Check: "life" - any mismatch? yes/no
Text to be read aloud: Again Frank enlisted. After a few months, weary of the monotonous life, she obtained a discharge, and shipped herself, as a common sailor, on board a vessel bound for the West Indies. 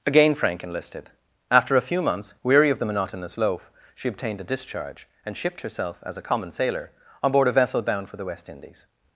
yes